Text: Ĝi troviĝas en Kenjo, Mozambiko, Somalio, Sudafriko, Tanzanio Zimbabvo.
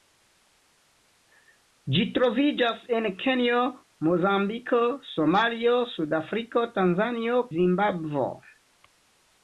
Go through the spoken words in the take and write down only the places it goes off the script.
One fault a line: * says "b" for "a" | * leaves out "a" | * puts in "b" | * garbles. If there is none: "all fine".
all fine